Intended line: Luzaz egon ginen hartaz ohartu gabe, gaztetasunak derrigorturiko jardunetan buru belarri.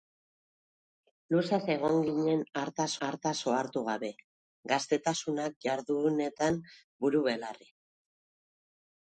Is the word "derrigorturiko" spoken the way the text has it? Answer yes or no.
no